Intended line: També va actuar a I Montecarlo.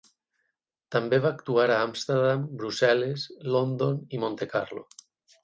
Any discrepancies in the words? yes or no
yes